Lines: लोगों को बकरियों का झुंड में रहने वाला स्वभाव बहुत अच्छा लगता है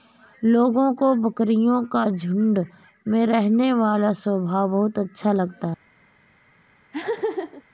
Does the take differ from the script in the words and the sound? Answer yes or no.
yes